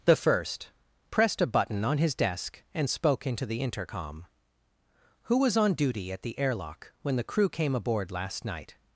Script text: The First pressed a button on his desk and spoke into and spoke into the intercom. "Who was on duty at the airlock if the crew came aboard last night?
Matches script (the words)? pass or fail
fail